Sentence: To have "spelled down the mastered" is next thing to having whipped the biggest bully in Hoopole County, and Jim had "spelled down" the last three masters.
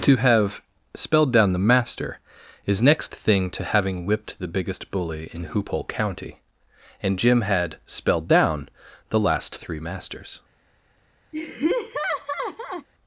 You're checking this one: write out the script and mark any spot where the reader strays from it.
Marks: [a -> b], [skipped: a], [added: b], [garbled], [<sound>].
To have "spelled down the [mastered" -> master] is next thing to having whipped the biggest bully in Hoopole County, and Jim had "spelled down" the last three masters. [laugh]